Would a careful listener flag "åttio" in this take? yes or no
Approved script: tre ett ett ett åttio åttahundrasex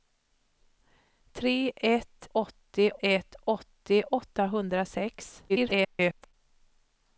no